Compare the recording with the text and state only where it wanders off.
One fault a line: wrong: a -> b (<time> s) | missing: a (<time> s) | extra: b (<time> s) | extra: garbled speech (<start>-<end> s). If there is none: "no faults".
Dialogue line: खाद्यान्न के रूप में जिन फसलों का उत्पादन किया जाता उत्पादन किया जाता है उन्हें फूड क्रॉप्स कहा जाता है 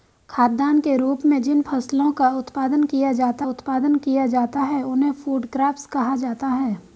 no faults